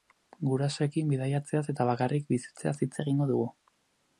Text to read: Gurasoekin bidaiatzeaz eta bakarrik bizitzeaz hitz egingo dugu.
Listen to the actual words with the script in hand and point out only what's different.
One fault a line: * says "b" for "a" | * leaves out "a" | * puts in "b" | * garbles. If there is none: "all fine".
all fine